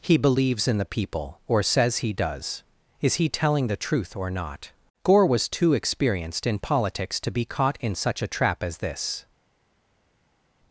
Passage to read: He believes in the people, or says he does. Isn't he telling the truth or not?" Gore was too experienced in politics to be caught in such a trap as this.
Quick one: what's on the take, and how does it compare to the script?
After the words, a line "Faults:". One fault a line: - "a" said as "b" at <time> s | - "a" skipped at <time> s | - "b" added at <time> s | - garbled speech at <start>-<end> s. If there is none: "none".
He believes in the people, or says he does. Is he telling the truth or not?" Gore was too experienced in politics to be caught in such a trap as this.
Faults:
- "Isn't" said as "Is" at 3.0 s